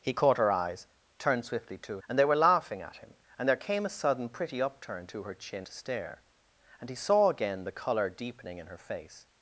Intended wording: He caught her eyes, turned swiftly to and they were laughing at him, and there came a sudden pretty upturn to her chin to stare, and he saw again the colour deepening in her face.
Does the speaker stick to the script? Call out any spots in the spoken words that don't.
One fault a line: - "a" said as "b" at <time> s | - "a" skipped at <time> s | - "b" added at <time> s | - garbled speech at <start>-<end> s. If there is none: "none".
none